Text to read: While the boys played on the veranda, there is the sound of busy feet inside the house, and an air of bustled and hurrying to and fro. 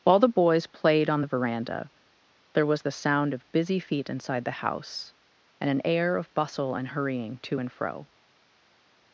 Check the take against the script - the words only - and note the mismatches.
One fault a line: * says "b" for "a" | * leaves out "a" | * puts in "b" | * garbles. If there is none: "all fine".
* says "was" for "is"
* says "bustle" for "bustled"